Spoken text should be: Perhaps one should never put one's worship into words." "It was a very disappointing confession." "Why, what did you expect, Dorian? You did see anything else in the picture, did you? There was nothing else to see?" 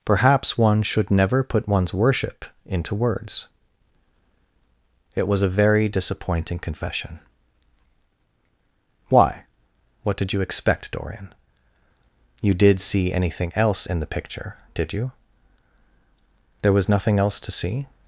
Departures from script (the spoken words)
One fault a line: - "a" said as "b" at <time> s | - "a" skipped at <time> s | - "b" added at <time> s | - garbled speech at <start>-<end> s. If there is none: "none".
none